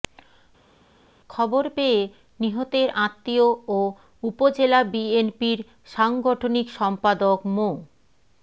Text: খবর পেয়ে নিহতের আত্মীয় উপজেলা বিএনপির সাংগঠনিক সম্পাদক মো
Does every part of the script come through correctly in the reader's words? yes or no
no